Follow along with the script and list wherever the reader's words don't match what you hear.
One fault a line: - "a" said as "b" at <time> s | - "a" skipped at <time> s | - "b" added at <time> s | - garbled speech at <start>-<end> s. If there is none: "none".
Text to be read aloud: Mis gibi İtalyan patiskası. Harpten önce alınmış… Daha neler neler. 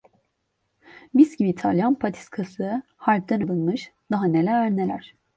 - "önce" skipped at 3.4 s